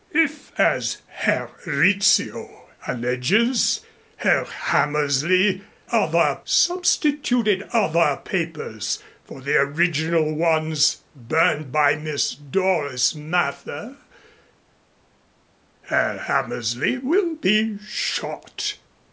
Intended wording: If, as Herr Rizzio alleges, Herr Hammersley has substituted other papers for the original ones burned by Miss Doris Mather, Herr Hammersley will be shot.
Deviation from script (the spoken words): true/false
true